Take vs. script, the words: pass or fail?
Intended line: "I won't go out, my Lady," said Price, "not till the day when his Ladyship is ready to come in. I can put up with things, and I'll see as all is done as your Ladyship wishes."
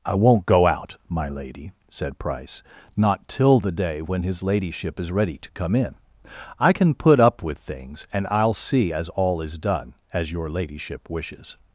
pass